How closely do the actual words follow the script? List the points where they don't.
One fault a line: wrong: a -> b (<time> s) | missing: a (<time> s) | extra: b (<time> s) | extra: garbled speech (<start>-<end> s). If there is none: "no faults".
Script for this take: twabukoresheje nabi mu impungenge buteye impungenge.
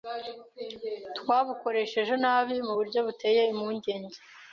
wrong: impungenge -> buryo (2.8 s)